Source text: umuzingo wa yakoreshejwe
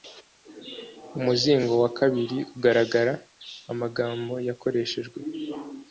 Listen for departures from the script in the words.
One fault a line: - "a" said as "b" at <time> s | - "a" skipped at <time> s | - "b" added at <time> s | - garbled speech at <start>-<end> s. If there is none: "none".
- "kabiri ugaragara amagambo" added at 2.0 s